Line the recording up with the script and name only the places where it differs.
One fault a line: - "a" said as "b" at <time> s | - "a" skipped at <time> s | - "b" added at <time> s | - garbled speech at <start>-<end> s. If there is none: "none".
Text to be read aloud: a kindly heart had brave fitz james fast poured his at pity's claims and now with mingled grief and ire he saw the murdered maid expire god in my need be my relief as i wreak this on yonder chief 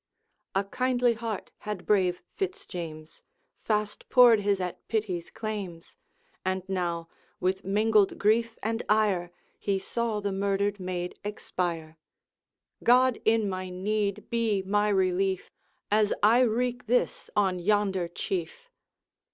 none